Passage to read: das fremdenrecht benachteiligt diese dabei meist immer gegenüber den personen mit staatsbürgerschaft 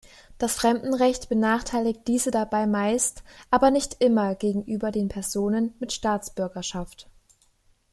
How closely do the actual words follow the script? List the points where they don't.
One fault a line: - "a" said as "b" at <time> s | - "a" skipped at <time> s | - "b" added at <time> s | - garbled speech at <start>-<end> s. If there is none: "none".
- "aber nicht" added at 3.5 s